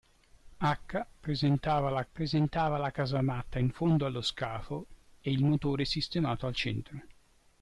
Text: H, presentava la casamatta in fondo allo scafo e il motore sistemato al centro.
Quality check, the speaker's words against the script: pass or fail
fail